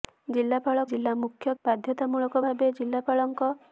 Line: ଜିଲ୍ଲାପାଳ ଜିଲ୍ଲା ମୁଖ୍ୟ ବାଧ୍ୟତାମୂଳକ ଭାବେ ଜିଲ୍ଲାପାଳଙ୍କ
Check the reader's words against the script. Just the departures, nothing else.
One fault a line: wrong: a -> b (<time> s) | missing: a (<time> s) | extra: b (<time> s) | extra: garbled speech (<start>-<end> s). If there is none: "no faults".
no faults